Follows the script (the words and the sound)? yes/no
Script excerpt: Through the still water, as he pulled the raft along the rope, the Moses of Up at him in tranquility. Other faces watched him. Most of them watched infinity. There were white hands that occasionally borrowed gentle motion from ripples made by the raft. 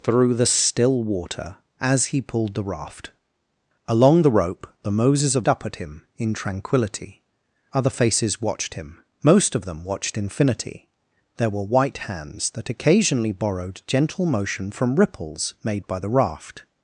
yes